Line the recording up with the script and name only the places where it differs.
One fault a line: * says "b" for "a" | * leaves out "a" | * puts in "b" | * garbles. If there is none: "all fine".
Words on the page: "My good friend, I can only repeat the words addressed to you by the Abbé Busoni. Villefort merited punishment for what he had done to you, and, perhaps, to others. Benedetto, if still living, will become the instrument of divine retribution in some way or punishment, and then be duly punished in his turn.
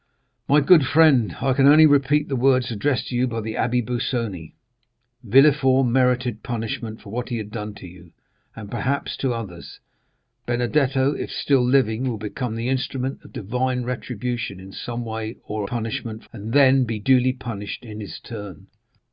all fine